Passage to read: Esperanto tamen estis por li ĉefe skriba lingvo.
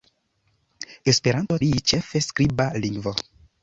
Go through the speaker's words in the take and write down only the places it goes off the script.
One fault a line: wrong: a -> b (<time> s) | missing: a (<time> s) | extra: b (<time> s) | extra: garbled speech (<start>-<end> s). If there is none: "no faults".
missing: tamen estis por (1.6 s)